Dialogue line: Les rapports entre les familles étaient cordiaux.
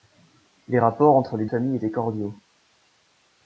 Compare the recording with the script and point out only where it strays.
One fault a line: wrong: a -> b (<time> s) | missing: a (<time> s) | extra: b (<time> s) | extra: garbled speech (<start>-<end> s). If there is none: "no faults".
no faults